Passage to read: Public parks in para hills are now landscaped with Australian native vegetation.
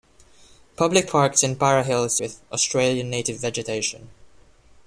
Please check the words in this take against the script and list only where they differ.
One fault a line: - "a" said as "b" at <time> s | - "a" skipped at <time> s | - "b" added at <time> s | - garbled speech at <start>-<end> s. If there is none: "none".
- "are now landscaped" skipped at 2.2 s